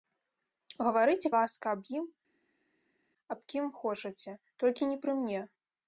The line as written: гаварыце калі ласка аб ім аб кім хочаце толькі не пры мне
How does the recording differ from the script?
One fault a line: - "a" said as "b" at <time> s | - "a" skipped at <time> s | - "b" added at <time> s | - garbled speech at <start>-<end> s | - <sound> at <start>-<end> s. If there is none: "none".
- "калі" skipped at 1.3 s